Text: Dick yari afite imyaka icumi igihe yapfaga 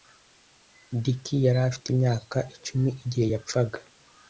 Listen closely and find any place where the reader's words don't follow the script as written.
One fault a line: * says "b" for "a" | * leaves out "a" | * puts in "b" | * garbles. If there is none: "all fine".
all fine